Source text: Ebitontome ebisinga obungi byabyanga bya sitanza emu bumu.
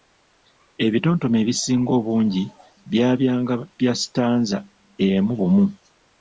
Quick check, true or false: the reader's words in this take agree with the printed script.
true